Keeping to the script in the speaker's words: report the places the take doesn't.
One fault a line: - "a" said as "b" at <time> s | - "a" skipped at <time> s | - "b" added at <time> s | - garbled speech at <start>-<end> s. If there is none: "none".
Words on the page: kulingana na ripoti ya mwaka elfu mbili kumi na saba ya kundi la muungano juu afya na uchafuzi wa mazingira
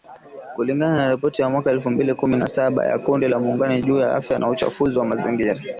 - "ya" added at 4.0 s